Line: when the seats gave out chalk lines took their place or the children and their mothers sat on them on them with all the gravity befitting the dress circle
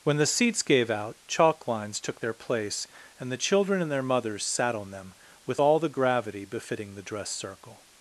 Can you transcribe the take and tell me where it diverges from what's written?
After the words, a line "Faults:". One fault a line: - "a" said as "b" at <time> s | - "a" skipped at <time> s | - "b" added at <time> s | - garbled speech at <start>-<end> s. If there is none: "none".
when the seats gave out chalk lines took their place and the children and their mothers sat on them with all the gravity befitting the dress circle
Faults:
- "or" said as "and" at 3.2 s
- "on them" skipped at 5.1 s